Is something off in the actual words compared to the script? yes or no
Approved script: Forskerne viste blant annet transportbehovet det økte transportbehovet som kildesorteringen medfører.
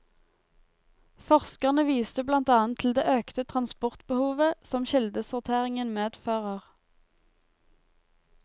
yes